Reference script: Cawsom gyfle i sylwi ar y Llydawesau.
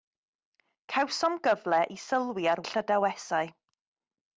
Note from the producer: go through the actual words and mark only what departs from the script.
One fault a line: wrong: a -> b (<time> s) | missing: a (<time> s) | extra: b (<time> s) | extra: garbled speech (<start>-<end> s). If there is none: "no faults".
no faults